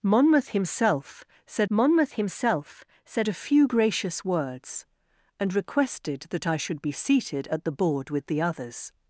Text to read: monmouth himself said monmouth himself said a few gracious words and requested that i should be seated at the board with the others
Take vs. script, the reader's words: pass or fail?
pass